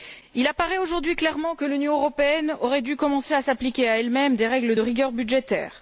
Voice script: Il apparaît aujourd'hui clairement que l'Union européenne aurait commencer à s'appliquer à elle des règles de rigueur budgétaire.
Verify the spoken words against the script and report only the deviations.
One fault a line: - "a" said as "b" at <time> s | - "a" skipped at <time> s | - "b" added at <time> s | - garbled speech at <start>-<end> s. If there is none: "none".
- "dû" added at 2.8 s
- "même" added at 4.1 s